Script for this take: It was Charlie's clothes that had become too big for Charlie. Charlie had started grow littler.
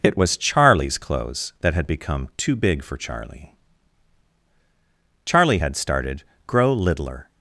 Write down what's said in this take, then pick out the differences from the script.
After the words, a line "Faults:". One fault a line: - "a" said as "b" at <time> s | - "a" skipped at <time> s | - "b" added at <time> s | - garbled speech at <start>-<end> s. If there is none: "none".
It was Charlie's clothes that had become too big for Charlie. Charlie had started grow littler.
Faults:
none